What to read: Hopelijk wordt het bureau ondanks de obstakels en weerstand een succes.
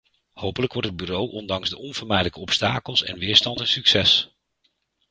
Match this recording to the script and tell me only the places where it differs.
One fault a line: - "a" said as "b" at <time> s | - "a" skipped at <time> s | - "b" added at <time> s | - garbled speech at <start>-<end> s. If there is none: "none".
- "onvermijdelijke" added at 1.8 s